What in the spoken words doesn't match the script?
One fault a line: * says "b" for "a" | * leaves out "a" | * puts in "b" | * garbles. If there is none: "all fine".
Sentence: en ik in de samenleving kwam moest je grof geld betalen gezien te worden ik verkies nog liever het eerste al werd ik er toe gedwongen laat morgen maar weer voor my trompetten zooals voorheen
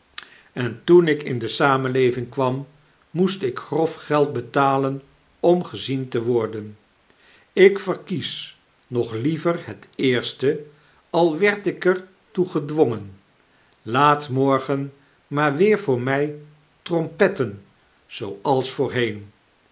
* puts in "toen"
* says "ik" for "je"
* puts in "om"